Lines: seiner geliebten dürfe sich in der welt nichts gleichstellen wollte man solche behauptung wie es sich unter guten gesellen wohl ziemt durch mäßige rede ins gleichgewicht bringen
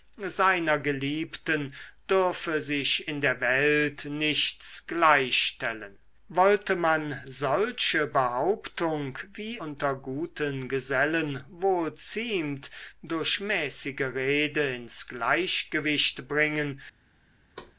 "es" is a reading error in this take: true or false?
true